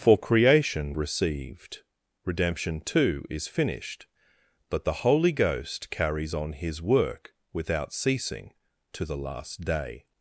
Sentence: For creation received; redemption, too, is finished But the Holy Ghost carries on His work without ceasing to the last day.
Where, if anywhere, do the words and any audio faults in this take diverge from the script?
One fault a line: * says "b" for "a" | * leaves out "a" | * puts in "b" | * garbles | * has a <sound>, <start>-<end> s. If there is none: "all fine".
all fine